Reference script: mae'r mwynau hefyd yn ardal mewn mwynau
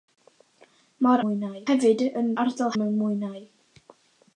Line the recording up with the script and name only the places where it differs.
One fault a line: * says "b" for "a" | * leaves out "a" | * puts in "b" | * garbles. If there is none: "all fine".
all fine